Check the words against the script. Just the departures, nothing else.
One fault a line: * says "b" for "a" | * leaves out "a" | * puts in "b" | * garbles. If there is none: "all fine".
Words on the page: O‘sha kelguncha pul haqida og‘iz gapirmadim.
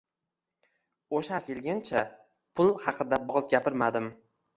all fine